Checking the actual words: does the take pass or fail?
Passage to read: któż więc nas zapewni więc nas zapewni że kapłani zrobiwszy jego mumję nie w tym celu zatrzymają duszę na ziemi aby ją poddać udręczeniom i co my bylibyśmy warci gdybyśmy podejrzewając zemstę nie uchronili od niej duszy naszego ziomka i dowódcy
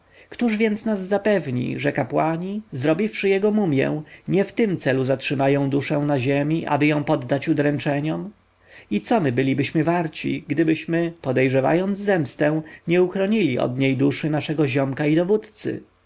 fail